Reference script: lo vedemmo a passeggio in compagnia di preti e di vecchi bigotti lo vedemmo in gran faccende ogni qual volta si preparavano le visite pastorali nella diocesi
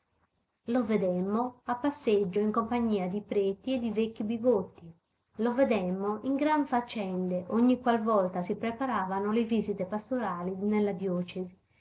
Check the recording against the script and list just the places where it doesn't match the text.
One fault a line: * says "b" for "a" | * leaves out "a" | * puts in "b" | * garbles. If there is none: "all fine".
all fine